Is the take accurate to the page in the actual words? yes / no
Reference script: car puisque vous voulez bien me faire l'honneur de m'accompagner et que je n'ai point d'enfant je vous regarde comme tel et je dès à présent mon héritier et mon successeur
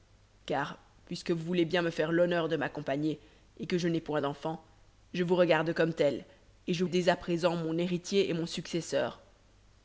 yes